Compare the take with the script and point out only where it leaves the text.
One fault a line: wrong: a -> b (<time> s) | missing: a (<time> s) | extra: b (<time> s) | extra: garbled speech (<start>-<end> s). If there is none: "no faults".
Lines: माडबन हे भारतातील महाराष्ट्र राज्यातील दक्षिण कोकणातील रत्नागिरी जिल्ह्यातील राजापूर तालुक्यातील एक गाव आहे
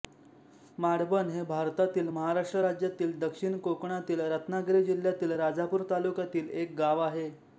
no faults